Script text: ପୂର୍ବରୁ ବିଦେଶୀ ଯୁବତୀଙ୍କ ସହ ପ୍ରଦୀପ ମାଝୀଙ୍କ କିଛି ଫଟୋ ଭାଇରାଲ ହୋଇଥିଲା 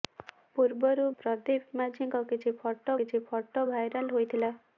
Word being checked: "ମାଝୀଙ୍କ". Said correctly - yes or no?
no